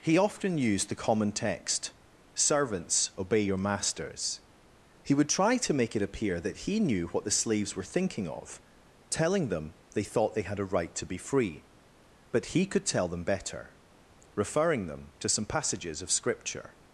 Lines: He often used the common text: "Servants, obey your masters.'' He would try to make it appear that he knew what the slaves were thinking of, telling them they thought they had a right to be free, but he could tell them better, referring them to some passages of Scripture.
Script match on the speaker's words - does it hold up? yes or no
yes